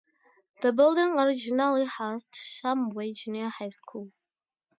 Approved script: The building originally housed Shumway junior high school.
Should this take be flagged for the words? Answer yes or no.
no